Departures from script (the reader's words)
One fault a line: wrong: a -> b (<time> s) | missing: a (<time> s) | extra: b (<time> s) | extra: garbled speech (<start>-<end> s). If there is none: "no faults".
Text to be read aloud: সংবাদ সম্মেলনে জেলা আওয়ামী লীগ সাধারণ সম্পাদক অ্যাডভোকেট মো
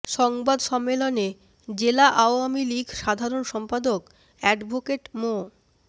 no faults